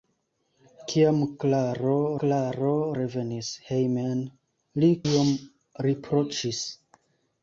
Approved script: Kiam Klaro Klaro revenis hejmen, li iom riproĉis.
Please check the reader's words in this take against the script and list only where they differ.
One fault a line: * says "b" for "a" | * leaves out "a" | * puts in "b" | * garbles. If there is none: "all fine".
all fine